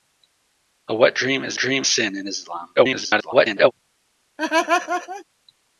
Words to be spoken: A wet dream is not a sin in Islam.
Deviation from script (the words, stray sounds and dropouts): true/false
true